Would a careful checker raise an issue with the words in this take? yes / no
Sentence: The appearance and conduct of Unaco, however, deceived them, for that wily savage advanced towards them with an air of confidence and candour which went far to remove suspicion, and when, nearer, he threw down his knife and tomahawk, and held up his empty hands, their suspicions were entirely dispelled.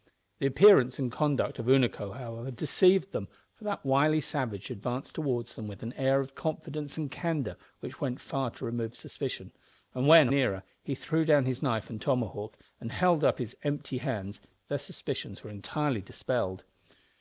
no